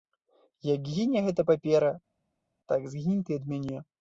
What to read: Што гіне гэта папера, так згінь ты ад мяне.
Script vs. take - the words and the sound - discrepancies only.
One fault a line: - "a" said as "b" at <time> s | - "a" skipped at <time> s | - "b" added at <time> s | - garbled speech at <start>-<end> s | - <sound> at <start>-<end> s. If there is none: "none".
- "Што" said as "Як" at 0.7 s